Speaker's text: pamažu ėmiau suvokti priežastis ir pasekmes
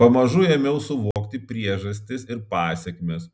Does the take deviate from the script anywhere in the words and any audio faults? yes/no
yes